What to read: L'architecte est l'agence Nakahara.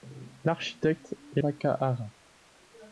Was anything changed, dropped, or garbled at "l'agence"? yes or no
yes